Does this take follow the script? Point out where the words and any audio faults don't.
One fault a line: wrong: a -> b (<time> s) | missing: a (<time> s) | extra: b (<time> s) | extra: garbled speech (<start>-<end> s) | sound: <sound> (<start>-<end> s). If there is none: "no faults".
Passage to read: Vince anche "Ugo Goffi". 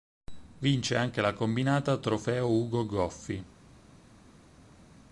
extra: la combinata Trofeo (1.2 s)